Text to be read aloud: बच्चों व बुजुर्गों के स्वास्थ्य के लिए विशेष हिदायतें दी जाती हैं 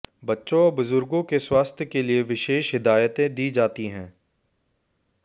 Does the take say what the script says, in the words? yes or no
yes